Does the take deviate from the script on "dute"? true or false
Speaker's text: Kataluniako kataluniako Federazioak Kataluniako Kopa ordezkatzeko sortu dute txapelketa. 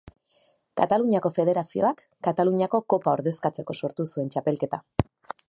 true